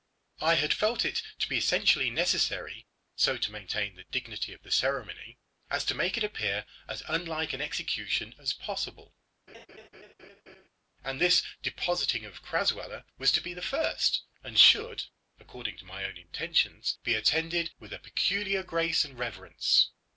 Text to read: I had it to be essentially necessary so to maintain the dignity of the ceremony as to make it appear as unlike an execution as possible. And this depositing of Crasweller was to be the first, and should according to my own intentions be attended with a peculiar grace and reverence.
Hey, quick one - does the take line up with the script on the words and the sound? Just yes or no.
no